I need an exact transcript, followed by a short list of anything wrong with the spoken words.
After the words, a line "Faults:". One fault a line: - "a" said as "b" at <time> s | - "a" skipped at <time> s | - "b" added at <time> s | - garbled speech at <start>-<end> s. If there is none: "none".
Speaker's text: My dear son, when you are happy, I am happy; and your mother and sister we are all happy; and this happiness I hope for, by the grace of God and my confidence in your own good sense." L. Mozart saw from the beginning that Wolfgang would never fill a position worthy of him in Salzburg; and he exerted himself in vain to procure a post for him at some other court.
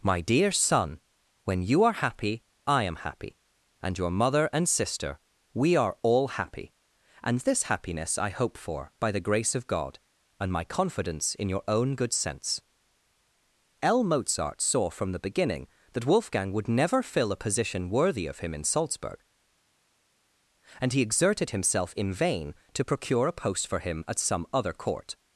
My dear son, when you are happy, I am happy; and your mother and sister we are all happy; and this happiness I hope for, by the grace of God and my confidence in your own good sense." L. Mozart saw from the beginning that Wolfgang would never fill a position worthy of him in Salzburg; and he exerted himself in vain to procure a post for him at some other court.
Faults:
none